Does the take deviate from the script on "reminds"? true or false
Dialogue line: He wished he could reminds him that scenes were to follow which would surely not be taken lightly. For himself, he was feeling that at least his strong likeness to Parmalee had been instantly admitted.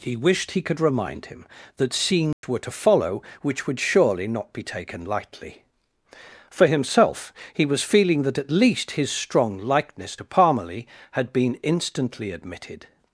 true